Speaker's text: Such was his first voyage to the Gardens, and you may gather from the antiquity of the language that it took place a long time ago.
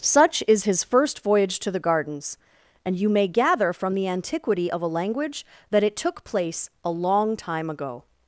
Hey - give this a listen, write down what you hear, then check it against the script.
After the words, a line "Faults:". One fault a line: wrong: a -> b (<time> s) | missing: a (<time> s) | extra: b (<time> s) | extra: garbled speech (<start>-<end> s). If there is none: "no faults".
Such is his first voyage to the Gardens, and you may gather from the antiquity of a language that it took place a long time ago.
Faults:
wrong: was -> is (0.5 s)
wrong: the -> a (4.8 s)